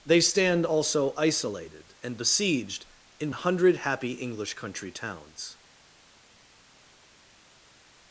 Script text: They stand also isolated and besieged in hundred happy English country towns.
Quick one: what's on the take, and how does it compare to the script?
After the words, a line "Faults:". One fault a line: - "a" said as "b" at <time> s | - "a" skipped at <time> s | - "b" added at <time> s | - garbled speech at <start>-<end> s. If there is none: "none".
They stand also isolated and besieged in hundred happy English country towns.
Faults:
none